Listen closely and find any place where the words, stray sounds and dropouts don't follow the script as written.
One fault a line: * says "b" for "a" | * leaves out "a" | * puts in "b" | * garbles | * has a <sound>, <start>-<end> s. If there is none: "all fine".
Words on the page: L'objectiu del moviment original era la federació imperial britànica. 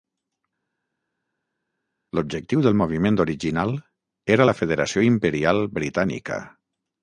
all fine